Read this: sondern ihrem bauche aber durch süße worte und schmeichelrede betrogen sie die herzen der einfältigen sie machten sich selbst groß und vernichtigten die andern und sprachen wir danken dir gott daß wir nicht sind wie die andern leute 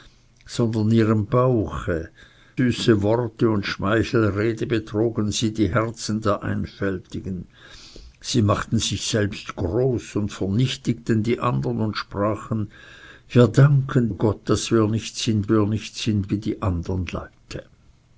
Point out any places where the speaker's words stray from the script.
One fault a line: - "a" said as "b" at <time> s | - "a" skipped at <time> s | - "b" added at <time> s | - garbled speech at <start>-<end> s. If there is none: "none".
- "aber durch" skipped at 2.1 s
- "dir" skipped at 14.1 s
- "wir nicht sind" added at 15.5 s